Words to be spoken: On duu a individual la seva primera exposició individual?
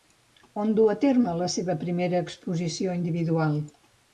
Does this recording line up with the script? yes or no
no